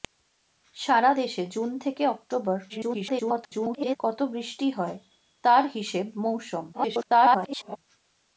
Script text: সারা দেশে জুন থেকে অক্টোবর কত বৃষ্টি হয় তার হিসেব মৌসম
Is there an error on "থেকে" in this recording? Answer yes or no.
no